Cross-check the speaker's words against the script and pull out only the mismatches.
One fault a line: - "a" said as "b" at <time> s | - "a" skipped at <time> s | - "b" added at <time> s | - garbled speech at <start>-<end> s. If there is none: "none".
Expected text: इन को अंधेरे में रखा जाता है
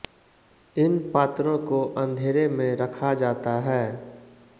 - "पात्रों" added at 1.1 s